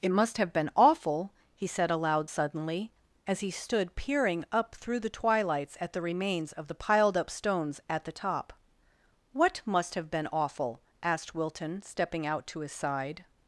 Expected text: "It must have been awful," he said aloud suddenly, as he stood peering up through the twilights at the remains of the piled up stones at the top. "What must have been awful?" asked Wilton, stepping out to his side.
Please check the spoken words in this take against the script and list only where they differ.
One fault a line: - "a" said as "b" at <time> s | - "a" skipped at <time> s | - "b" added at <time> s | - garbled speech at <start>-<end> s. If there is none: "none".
none